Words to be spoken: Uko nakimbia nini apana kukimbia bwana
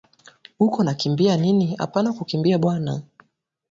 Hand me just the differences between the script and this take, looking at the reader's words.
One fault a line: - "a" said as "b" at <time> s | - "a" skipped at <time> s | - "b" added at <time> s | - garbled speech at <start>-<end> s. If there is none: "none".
none